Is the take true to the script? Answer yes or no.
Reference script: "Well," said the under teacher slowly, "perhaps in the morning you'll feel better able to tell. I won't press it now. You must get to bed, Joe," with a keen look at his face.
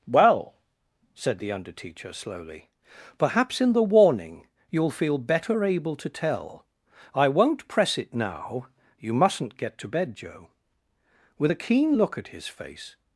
no